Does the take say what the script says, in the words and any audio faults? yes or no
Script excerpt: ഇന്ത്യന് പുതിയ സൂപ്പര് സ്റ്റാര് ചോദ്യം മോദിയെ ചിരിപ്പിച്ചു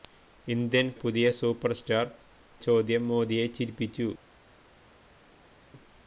yes